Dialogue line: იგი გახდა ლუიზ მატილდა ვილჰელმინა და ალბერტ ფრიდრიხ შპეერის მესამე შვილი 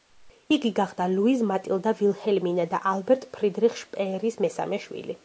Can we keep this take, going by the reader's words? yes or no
yes